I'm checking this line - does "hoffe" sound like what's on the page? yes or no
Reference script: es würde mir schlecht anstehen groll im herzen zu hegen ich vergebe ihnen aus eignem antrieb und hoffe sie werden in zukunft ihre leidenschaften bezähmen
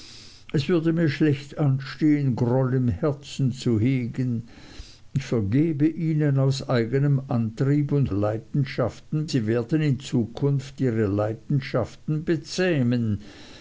no